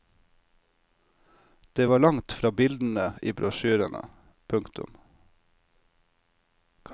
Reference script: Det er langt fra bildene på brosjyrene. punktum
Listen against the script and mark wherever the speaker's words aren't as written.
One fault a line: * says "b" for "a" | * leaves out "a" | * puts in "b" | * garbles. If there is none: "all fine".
* says "var" for "er"
* says "i" for "på"